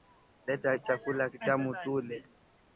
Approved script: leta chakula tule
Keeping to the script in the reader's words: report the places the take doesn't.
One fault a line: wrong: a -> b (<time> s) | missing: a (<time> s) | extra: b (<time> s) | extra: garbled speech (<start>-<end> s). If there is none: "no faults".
extra: kitamu (1.3 s)